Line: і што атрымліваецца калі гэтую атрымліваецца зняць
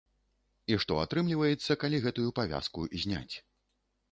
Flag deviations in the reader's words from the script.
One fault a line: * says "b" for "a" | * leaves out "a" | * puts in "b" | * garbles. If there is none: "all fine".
* says "павязку" for "атрымліваецца"